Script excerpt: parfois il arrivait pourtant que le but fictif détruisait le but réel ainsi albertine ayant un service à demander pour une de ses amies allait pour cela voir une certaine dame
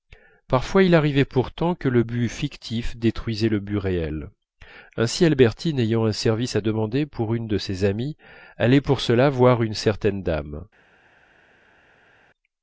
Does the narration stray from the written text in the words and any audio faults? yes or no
no